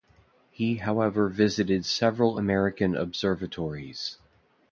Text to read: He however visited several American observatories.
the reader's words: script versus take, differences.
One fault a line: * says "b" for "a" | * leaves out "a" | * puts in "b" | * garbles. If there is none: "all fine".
all fine